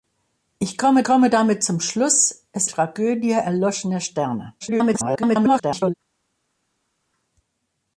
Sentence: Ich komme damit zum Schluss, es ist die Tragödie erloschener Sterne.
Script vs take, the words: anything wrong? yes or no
yes